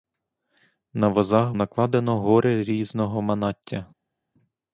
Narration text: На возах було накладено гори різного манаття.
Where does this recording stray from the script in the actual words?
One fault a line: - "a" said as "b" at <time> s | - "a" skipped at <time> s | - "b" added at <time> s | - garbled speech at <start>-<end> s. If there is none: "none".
- "було" skipped at 1.5 s